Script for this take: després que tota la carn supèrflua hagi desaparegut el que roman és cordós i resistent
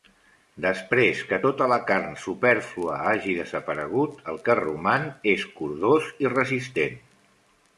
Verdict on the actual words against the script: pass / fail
pass